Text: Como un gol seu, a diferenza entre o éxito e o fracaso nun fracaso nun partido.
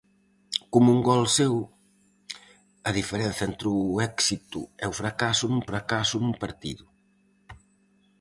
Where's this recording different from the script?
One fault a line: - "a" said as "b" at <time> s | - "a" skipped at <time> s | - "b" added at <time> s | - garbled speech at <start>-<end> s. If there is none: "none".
none